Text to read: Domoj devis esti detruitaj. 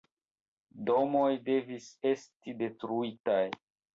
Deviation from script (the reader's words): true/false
false